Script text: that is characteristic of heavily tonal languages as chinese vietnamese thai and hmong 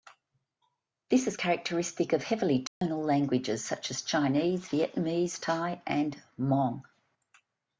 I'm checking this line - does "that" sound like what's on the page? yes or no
no